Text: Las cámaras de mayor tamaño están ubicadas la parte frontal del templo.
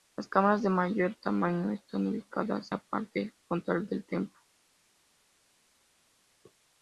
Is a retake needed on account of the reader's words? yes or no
no